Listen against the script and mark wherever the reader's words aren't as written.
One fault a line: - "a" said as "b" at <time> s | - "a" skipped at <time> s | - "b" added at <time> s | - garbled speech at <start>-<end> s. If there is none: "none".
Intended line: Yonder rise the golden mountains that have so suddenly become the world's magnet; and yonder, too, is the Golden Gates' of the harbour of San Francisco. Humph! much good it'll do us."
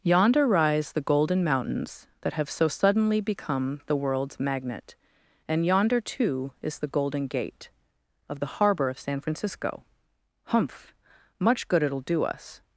- "Gates" said as "Gate" at 7.3 s